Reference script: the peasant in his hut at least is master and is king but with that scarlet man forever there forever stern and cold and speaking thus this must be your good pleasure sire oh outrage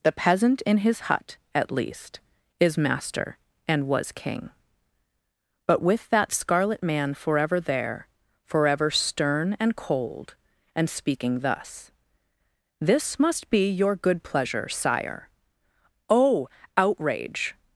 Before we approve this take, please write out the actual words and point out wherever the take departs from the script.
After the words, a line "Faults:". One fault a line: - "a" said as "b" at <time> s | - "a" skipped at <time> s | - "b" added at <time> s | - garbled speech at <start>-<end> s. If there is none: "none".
the peasant in his hut at least is master and was king but with that scarlet man forever there forever stern and cold and speaking thus this must be your good pleasure sire oh outrage
Faults:
- "is" said as "was" at 3.9 s